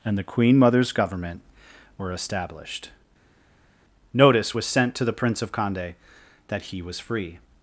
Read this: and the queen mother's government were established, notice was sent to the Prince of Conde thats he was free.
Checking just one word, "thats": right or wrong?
wrong